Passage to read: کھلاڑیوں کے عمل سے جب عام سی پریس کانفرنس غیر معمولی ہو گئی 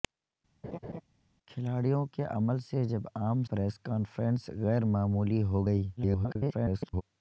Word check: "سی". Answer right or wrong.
wrong